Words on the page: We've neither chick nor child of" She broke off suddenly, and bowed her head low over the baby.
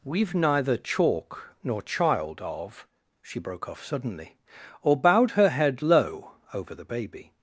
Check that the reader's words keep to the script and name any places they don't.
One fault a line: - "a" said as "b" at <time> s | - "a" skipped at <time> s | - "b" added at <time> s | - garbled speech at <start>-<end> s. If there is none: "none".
- "chick" said as "chalk" at 0.8 s
- "and" said as "or" at 4.8 s